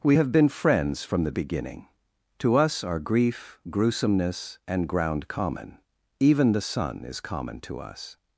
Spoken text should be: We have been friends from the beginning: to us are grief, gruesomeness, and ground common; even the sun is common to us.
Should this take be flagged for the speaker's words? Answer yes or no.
no